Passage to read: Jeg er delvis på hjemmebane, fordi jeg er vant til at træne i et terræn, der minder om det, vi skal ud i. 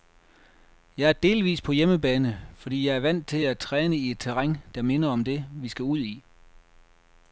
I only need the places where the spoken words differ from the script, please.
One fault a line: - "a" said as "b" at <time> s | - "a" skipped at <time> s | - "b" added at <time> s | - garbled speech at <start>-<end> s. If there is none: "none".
none